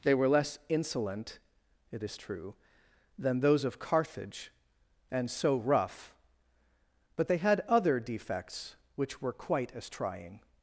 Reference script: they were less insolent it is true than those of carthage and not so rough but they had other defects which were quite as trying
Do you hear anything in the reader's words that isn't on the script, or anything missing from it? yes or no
yes